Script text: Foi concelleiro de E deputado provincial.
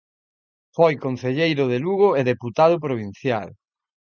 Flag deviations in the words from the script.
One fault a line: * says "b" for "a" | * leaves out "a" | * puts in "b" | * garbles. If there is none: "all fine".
* puts in "Lugo"